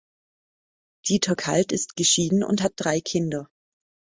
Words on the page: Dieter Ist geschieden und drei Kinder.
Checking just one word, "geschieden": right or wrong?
right